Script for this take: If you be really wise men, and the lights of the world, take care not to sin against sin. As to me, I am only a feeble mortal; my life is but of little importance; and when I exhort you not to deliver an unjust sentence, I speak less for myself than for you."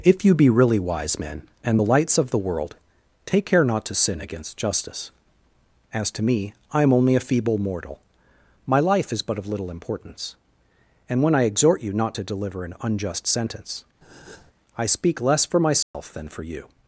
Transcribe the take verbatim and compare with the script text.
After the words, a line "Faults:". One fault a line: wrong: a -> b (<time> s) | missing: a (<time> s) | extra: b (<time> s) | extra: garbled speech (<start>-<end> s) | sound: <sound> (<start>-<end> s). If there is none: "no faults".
If you be really wise men, and the lights of the world, take care not to sin against justice. As to me, I am only a feeble mortal; my life is but of little importance; and when I exhort you not to deliver an unjust sentence, I speak less for myself than for you."
Faults:
wrong: sin -> justice (4.5 s)
sound: breath (14.0-14.5 s)
sound: dropout (15.8-15.9 s)